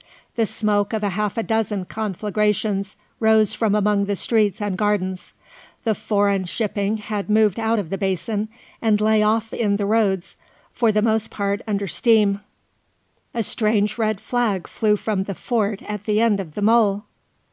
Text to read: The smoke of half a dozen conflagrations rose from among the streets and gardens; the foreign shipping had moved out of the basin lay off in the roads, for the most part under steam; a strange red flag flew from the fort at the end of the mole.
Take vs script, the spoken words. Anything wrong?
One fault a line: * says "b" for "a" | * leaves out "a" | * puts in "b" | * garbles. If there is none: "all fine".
* puts in "and"